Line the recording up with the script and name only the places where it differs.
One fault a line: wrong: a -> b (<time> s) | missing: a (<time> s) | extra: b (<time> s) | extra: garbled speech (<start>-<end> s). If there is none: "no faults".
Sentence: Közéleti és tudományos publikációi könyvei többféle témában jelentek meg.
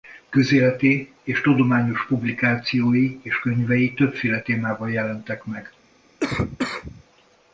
extra: és (3.2 s)